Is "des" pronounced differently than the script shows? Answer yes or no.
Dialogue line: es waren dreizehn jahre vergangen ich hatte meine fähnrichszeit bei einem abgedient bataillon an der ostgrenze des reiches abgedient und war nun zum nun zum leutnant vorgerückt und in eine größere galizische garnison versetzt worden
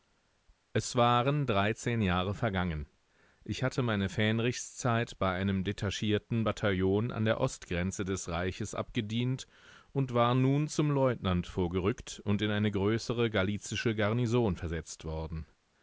no